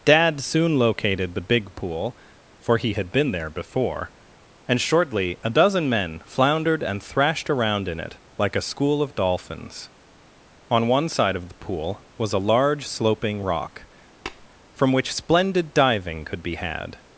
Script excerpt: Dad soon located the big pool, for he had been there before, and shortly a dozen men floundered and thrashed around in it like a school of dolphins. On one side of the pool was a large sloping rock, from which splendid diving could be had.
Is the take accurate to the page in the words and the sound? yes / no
no